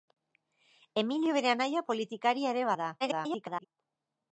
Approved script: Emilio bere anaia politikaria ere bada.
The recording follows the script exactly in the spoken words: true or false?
false